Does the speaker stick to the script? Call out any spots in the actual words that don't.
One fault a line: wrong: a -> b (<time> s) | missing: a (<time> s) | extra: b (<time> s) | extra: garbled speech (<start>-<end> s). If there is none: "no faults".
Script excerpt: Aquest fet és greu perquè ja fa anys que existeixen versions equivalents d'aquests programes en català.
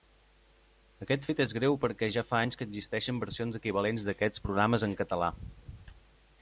no faults